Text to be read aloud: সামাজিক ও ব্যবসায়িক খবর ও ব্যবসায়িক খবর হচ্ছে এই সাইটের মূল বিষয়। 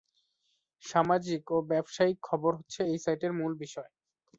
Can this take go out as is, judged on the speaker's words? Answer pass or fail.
fail